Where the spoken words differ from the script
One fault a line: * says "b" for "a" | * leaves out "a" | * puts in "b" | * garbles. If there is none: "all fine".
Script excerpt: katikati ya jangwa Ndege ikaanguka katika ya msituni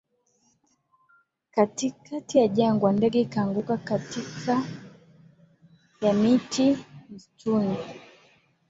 * puts in "miti"